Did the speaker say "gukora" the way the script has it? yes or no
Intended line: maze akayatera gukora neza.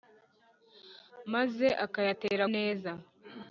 no